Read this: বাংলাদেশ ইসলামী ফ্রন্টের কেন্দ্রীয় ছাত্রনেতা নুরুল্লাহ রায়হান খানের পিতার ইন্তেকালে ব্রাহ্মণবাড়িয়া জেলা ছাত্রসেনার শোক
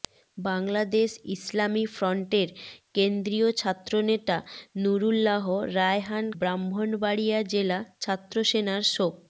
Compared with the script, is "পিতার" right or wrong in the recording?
wrong